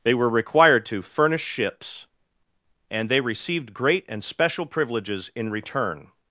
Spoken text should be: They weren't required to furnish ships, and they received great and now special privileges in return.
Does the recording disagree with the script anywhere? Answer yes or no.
yes